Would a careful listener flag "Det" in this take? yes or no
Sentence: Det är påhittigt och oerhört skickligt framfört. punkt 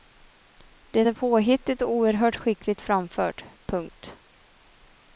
no